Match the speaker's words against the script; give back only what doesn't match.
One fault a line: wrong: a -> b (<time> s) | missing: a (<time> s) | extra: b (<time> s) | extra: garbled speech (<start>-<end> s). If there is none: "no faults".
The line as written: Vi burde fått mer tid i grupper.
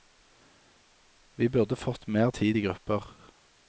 no faults